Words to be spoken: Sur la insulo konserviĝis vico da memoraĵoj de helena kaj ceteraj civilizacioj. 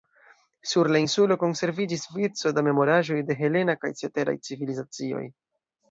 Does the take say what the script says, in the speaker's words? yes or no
yes